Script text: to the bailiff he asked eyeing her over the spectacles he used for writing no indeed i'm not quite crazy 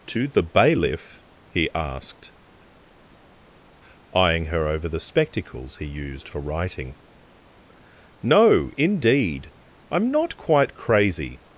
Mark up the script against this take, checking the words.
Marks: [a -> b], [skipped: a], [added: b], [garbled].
to the bailiff he asked eyeing her over the spectacles he used for writing no indeed i'm not quite crazy